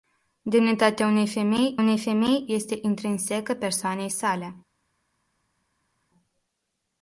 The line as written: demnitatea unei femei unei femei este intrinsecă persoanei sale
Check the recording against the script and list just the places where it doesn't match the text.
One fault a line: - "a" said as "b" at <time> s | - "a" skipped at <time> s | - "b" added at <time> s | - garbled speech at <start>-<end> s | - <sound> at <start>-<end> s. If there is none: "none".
none